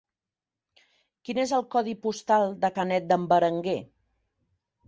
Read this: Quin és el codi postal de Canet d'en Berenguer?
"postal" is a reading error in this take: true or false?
false